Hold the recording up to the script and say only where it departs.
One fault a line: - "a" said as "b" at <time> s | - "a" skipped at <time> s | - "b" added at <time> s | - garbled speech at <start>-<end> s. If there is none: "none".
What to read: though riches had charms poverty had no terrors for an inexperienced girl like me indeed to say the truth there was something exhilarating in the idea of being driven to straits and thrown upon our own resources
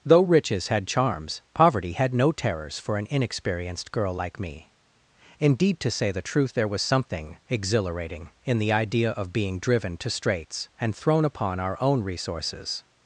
none